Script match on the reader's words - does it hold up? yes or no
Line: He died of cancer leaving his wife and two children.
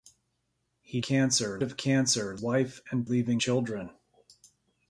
no